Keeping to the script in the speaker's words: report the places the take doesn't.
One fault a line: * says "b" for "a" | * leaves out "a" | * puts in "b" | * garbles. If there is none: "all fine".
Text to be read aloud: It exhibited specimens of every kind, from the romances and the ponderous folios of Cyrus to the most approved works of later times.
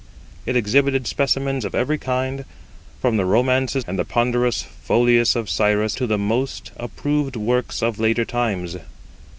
all fine